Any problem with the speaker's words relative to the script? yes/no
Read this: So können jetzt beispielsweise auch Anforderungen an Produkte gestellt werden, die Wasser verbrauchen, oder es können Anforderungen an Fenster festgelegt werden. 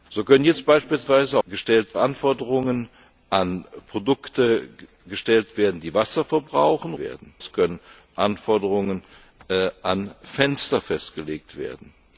yes